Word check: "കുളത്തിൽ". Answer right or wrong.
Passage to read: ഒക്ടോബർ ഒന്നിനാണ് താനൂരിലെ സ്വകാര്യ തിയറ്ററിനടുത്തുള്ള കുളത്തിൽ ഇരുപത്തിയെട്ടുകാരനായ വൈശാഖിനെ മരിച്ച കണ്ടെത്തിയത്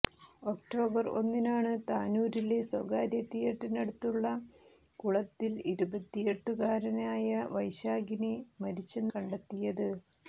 right